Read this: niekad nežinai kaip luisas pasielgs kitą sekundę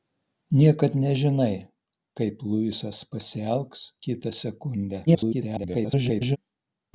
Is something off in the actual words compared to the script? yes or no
yes